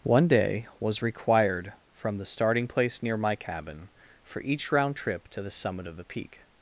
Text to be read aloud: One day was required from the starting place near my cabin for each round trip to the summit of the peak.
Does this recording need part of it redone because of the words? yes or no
no